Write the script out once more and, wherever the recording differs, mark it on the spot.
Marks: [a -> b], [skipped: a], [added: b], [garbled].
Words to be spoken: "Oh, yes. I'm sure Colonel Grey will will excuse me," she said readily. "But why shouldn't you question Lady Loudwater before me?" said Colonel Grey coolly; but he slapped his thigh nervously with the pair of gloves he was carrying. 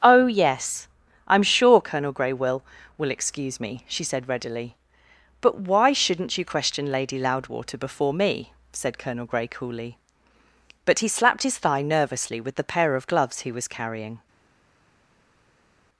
"Oh, yes. I'm sure Colonel Grey will will excuse me," she said readily. "But why shouldn't you question Lady Loudwater before me?" said Colonel Grey coolly; but he slapped his thigh nervously with the pair of gloves he was carrying.